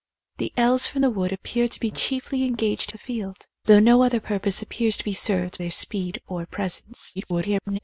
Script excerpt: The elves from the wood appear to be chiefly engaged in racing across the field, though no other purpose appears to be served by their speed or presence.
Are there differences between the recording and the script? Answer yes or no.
yes